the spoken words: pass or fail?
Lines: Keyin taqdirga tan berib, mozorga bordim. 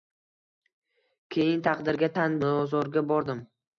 fail